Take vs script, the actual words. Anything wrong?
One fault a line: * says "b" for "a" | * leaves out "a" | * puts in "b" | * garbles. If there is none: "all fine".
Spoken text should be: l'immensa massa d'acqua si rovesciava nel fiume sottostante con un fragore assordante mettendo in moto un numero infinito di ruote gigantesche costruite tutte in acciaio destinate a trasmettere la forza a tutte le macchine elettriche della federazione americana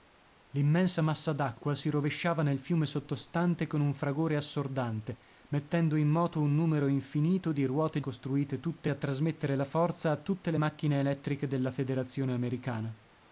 * leaves out "gigantesche"
* leaves out "in acciaio destinate"